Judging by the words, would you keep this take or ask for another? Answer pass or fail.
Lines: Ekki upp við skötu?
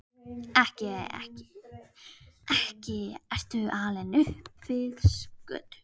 fail